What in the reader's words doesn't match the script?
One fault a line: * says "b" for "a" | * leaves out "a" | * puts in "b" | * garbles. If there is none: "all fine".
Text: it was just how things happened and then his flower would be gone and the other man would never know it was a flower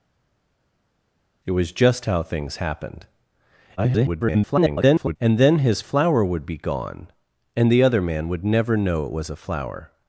* garbles